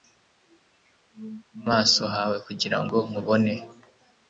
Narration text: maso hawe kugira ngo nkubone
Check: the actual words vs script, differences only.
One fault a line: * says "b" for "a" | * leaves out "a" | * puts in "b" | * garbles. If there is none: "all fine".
all fine